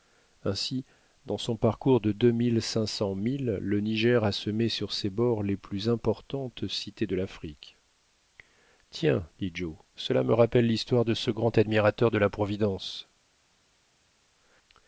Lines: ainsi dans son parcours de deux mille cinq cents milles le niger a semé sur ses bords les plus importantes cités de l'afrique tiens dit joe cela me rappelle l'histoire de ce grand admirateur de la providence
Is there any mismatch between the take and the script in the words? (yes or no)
no